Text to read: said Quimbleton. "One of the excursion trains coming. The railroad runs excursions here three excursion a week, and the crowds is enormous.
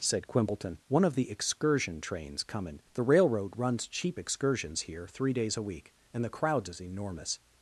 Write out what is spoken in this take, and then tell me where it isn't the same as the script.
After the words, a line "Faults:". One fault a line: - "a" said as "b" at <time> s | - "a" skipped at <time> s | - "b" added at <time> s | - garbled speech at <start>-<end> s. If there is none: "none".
said Quimbleton. "One of the excursion trains coming. The railroad runs cheap excursions here three days a week, and the crowds is enormous.
Faults:
- "cheap" added at 3.9 s
- "excursion" said as "days" at 5.3 s